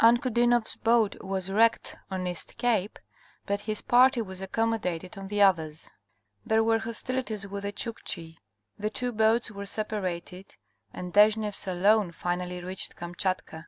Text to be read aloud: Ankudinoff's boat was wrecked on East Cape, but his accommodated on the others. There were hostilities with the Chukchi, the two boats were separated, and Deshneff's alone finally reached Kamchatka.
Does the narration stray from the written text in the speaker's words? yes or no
yes